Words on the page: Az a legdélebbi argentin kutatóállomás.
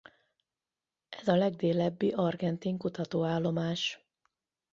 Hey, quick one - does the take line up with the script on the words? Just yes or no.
no